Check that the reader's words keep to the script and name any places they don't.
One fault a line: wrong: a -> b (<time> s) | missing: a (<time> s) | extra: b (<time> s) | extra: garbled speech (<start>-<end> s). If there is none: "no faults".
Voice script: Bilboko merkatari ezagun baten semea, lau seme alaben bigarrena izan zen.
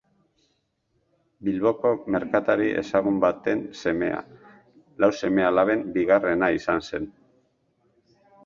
no faults